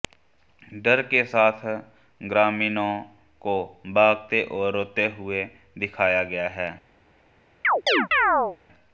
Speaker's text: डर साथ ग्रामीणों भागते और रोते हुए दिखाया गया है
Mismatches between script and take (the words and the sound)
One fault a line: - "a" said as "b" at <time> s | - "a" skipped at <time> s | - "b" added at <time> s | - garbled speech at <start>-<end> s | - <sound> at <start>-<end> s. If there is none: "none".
- "के" added at 1.0 s
- "को" added at 3.4 s
- chirp at 7.6-8.6 s